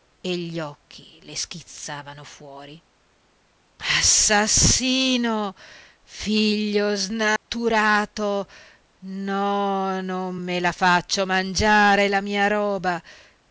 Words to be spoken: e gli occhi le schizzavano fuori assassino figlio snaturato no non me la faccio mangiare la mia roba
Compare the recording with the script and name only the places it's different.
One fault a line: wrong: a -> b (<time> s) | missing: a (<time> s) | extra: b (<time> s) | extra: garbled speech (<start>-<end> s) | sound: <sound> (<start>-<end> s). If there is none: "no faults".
sound: dropout (7.4-7.5 s)